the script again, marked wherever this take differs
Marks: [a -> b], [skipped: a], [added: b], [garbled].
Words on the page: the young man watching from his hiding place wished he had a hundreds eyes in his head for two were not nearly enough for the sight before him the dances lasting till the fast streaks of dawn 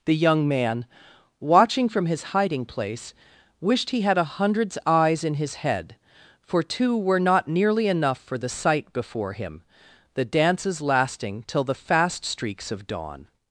the young man watching from his hiding place wished he had a hundreds eyes in his head for two were not nearly enough for the sight before him the dances lasting till the fast streaks of dawn